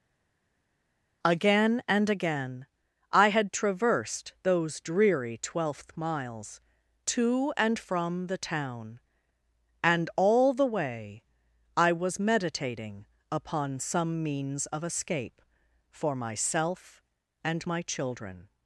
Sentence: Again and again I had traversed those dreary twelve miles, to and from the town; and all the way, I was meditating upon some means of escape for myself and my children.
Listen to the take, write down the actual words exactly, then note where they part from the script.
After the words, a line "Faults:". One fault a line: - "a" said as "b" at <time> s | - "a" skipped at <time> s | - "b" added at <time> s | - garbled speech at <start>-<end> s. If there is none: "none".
Again and again I had traversed those dreary twelfth miles, to and from the town; and all the way, I was meditating upon some means of escape for myself and my children.
Faults:
- "twelve" said as "twelfth" at 5.4 s